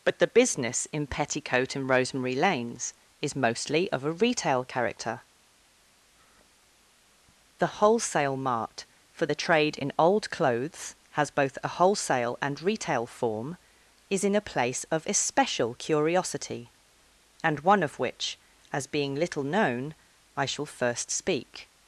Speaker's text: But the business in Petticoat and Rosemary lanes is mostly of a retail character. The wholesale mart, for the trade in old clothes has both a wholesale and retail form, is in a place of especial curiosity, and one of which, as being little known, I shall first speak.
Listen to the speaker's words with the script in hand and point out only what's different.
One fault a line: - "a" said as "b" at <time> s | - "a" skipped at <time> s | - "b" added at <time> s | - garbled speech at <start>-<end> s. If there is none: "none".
none